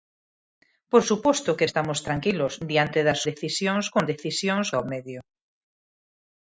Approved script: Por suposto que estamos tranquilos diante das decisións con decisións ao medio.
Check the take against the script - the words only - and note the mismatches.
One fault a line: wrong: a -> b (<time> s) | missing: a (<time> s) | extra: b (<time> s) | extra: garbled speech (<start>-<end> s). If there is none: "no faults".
no faults